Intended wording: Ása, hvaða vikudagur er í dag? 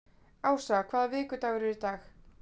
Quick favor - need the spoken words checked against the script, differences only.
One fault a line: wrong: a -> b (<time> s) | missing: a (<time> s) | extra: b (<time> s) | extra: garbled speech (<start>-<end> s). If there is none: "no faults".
no faults